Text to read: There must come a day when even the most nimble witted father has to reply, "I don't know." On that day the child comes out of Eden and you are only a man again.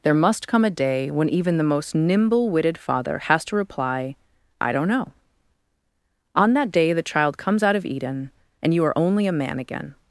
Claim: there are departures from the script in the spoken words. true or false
false